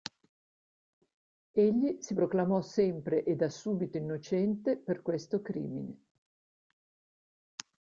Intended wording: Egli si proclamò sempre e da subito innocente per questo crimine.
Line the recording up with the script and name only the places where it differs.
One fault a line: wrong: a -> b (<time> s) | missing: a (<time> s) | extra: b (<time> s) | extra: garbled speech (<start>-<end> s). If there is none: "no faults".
no faults